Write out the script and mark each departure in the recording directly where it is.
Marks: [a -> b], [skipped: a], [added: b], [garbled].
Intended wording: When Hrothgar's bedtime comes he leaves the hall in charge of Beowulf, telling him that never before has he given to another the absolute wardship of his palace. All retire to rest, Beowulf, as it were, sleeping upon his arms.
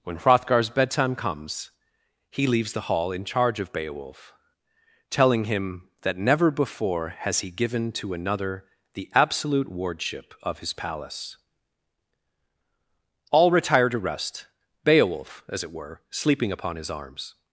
When Hrothgar's bedtime comes he leaves the hall in charge of Beowulf, telling him that never before has he given to another the absolute wardship of his palace. All retire to rest, Beowulf, as it were, sleeping upon his arms.